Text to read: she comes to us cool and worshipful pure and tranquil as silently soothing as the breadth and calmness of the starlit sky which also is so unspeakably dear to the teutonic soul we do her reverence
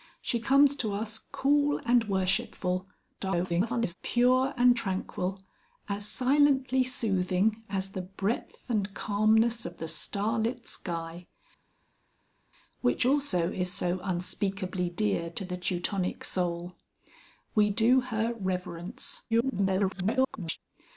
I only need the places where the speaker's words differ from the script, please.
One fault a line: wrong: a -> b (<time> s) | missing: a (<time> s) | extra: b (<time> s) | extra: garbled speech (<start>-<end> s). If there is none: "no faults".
extra: garbled speech (3.2-3.9 s)
extra: garbled speech (19.3-20.6 s)